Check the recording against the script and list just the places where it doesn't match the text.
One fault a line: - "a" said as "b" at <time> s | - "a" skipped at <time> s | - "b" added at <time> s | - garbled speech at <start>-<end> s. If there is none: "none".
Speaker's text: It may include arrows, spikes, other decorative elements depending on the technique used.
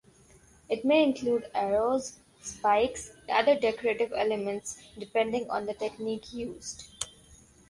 none